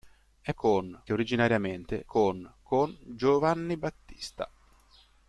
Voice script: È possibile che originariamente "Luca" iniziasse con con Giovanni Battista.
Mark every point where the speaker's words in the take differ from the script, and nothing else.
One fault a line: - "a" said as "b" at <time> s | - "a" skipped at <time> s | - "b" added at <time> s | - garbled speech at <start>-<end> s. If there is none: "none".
- "possibile" said as "con" at 0.5 s
- "Luca iniziasse" skipped at 2.0 s